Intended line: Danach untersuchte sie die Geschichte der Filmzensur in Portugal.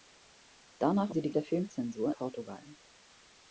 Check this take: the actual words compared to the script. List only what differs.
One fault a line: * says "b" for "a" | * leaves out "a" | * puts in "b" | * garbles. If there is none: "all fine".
* leaves out "untersuchte"
* leaves out "Geschichte"
* leaves out "in"